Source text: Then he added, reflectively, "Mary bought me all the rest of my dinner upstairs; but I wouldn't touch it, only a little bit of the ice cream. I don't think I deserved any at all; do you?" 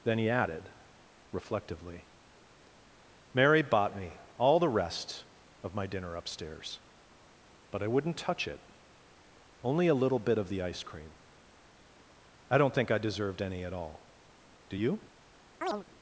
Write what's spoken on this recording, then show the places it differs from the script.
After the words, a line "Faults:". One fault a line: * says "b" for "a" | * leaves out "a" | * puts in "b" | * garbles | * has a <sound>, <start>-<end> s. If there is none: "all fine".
Then he added, reflectively, "Mary bought me all the rest of my dinner upstairs; but I wouldn't touch it, only a little bit of the ice cream. I don't think I deserved any at all; do you?"
Faults:
* has a chirp, 15.6-15.8 s